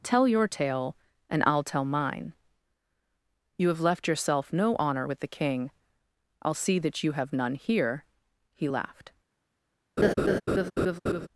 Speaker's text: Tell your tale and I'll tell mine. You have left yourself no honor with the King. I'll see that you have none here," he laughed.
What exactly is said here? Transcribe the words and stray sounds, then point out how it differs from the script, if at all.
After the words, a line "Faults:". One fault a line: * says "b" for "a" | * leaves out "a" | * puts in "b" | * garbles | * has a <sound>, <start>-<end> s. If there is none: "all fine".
Tell your tale and I'll tell mine. You have left yourself no honor with the King. I'll see that you have none here," he laughed.
Faults:
* has a laugh, 10.0-11.3 s